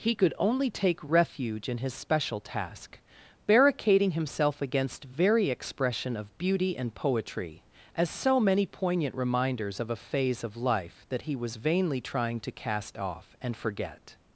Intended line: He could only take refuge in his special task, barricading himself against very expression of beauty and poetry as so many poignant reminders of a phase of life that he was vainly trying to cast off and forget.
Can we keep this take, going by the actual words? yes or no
yes